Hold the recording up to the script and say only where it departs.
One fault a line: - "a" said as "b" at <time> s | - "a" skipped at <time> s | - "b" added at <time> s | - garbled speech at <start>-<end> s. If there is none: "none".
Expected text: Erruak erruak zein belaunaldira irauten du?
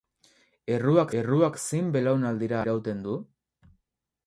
none